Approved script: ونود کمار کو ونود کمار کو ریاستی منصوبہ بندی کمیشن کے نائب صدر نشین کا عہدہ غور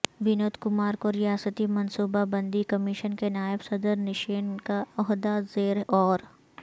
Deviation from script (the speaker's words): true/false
true